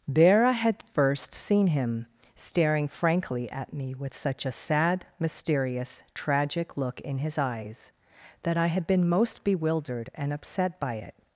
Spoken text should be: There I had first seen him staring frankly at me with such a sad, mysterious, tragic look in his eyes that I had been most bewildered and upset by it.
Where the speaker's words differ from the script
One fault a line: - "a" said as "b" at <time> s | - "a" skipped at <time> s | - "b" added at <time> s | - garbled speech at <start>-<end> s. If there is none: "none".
none